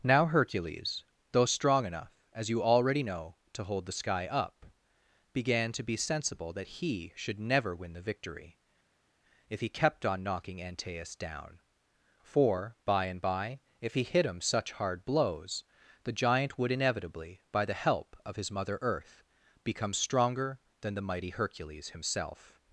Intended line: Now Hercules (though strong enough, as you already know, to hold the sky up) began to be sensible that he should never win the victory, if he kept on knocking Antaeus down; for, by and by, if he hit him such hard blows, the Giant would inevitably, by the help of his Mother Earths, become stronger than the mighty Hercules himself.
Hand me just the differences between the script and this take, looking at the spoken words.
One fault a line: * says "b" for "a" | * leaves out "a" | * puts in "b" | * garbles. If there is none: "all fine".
* says "Earth" for "Earths"